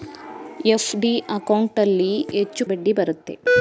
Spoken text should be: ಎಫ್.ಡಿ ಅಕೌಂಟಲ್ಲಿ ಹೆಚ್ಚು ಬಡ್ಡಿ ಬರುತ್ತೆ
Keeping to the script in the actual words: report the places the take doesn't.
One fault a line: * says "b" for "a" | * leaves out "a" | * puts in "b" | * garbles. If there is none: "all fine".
all fine